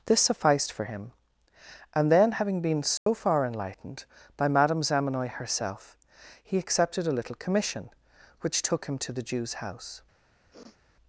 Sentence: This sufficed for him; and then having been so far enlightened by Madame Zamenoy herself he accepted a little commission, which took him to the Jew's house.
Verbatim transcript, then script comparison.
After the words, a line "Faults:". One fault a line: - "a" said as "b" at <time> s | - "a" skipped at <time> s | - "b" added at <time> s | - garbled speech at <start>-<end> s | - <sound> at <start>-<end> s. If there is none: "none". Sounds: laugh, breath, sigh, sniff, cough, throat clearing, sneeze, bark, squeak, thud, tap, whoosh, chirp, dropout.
This sufficed for him; and then having been so far enlightened by Madame Zamenoy herself he accepted a little commission, which took him to the Jew's house.
Faults:
- dropout at 3.0-3.1 s
- sniff at 10.5-10.8 s